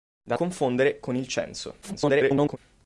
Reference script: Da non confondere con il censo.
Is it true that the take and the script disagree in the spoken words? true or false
true